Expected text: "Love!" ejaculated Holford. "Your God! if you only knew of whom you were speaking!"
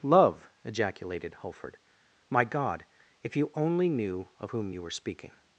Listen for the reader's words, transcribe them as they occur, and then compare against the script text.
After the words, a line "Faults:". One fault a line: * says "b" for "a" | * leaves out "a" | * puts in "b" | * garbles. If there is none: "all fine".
"Love!" ejaculated Holford. "My God! if you only knew of whom you were speaking!"
Faults:
* says "My" for "Your"